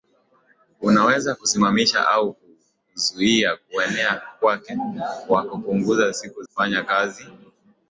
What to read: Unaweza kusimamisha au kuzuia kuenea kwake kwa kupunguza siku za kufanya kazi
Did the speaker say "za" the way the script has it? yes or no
no